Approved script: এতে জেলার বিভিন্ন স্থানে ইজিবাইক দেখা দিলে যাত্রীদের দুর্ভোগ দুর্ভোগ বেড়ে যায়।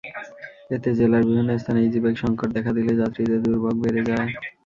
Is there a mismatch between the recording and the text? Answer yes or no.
yes